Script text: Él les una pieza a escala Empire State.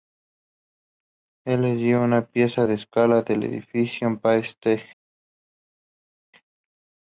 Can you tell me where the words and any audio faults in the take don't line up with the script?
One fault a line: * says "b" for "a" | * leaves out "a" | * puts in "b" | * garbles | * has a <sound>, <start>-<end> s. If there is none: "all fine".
* puts in "dio"
* puts in "del edificio"